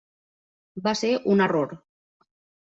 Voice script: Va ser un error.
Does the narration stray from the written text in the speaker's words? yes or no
no